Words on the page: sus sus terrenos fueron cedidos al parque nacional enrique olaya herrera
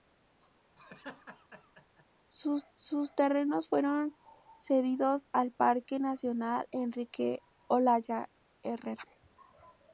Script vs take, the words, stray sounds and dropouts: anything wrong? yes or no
yes